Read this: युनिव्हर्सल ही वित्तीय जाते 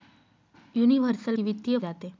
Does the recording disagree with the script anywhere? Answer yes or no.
no